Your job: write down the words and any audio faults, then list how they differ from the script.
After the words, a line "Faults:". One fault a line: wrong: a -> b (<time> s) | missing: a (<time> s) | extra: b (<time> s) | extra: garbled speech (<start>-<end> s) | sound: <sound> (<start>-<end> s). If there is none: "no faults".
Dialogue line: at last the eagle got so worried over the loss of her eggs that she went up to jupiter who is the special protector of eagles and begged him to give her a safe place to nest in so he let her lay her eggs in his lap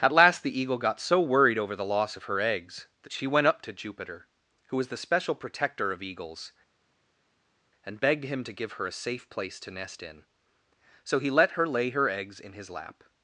at last the eagle got so worried over the loss of her eggs that she went up to jupiter who was the special protector of eagles and begged him to give her a safe place to nest in so he let her lay her eggs in his lap
Faults:
wrong: is -> was (4.8 s)